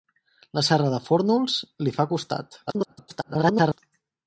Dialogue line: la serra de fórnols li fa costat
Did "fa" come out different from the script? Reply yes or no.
no